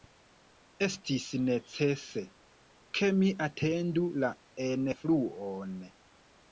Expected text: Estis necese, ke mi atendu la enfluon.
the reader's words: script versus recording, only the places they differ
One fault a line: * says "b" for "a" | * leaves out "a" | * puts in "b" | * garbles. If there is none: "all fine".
all fine